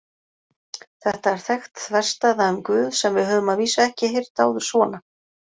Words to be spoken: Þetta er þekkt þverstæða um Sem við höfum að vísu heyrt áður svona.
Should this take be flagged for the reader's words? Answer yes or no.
yes